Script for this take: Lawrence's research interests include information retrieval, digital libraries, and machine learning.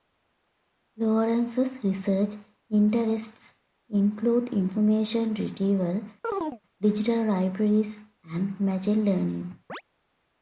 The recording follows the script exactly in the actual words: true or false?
true